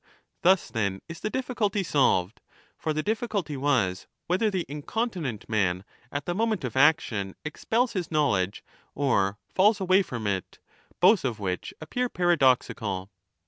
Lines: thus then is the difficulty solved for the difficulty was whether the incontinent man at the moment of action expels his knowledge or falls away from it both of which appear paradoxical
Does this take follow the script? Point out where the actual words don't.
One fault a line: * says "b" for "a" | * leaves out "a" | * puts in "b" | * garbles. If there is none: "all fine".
all fine